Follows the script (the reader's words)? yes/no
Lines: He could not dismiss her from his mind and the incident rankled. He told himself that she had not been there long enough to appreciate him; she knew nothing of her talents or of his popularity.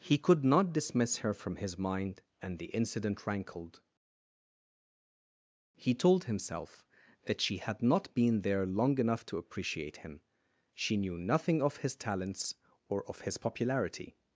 no